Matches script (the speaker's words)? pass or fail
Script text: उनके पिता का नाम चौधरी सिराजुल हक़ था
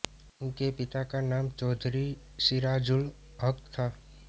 pass